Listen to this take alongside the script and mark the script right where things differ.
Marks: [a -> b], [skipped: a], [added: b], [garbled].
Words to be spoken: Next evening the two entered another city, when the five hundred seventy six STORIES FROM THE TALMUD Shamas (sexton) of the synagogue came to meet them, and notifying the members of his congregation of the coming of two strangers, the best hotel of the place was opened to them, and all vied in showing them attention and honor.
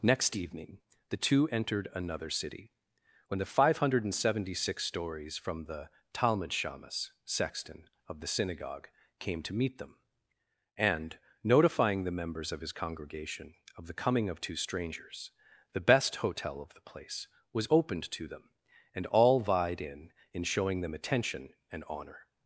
Next evening the two entered another city, when the five hundred seventy six STORIES FROM THE TALMUD Shamas (sexton) of the synagogue came to meet them, and notifying the members of his congregation of the coming of two strangers, the best hotel of the place was opened to them, and all vied in [added: in] showing them attention and honor.